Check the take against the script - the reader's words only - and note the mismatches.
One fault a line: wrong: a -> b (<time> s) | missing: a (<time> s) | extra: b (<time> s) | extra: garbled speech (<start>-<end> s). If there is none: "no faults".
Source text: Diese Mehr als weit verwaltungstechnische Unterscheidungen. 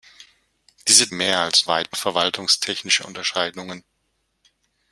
no faults